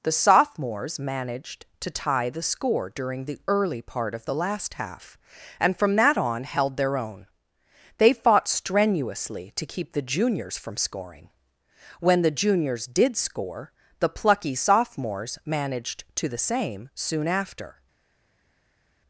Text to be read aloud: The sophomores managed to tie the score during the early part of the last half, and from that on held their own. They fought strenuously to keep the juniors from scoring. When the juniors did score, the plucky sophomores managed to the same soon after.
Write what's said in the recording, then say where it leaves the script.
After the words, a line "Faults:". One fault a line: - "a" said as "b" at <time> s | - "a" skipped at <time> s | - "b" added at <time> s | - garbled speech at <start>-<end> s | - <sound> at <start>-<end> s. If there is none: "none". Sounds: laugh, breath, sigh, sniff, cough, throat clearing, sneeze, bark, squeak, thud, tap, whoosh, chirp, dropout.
The sophomores managed to tie the score during the early part of the last half, and from that on held their own. They fought strenuously to keep the juniors from scoring. When the juniors did score, the plucky sophomores managed to the same soon after.
Faults:
none